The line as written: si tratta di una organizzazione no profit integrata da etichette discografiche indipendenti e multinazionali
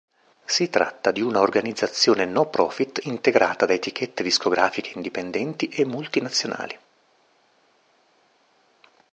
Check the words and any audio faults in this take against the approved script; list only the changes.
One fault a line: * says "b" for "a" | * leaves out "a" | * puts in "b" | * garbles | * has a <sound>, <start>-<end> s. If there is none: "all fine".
all fine